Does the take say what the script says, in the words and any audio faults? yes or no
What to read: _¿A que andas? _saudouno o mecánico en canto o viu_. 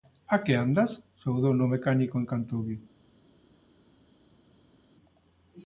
yes